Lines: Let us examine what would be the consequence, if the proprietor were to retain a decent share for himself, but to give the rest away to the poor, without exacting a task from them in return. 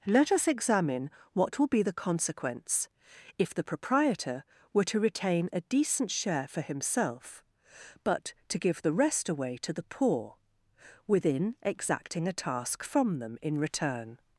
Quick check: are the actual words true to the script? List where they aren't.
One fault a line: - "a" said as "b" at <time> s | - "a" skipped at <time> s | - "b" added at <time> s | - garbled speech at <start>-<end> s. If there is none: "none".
- "would" said as "will" at 1.6 s
- "without" said as "within" at 11.1 s